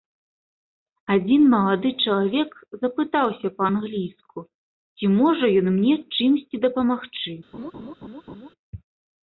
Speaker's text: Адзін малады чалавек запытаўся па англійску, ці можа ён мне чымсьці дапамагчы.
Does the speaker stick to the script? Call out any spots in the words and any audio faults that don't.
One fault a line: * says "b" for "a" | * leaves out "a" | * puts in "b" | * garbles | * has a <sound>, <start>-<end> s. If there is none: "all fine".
* has a laugh, 7.5-8.5 s